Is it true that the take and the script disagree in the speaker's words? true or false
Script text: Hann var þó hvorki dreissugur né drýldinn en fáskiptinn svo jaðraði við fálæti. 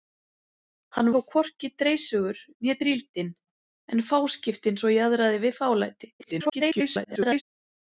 true